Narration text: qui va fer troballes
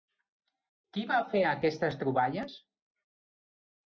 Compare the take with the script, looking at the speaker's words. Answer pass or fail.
fail